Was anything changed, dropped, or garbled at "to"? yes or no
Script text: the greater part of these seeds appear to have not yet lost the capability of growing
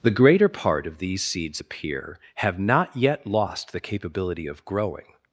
yes